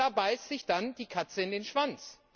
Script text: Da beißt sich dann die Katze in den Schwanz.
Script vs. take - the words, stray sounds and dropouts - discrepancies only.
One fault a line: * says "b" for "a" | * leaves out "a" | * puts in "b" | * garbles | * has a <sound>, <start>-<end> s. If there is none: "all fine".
all fine